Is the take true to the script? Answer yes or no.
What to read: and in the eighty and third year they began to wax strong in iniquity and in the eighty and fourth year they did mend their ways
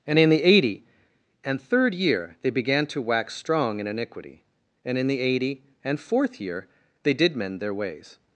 yes